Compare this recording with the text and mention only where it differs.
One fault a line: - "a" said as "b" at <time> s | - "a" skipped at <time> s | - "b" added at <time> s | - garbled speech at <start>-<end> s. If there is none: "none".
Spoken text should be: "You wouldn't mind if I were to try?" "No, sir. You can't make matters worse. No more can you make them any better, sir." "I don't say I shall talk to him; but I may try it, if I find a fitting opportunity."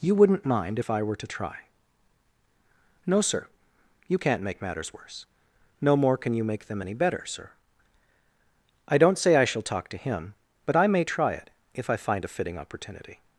none